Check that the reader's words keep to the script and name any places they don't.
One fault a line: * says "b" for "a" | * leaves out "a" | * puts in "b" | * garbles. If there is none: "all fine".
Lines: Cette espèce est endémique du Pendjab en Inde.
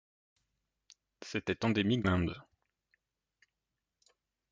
* leaves out "espèce"
* leaves out "du Pendjab en"